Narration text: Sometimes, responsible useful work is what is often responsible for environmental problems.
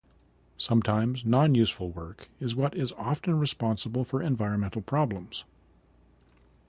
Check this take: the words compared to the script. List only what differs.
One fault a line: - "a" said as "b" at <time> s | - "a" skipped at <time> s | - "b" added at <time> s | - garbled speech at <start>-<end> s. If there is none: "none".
- "responsible" said as "non" at 1.2 s